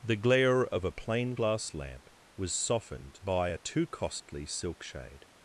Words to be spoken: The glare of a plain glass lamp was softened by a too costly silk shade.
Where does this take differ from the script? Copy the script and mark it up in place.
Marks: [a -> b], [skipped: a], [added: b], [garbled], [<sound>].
The glare of a plain glass lamp was softened by a too costly silk shade.